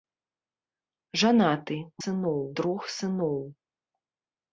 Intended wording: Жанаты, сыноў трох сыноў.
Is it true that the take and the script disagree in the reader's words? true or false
false